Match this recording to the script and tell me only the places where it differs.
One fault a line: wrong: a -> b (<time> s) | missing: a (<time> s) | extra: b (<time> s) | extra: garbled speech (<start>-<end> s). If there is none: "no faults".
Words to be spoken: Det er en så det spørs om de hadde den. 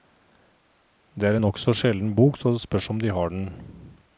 extra: nokså sjelden bok (1.5 s)
wrong: hadde -> har (3.1 s)